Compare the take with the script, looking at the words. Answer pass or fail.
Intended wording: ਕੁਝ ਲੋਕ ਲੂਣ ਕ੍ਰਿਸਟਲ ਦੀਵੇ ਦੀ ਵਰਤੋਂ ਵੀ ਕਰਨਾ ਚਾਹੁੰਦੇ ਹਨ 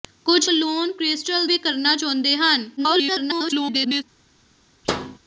fail